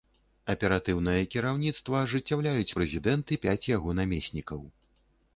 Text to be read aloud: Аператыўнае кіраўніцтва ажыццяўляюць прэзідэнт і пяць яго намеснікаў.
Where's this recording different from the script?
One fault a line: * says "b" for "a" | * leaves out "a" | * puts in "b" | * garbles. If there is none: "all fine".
all fine